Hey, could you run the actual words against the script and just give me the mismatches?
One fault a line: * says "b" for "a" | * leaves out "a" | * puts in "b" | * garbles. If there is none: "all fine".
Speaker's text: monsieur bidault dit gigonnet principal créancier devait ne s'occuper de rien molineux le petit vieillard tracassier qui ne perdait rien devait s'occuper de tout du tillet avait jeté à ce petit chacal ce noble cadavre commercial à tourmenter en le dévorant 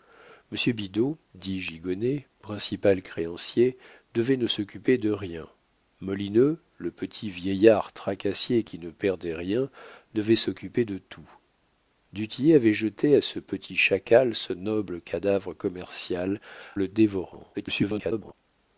* leaves out "à tourmenter en"
* garbles